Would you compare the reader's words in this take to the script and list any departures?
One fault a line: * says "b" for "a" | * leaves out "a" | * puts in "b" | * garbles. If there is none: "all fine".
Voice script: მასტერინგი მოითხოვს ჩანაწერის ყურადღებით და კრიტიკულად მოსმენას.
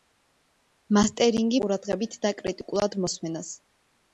* leaves out "მოითხოვს ჩანაწერის"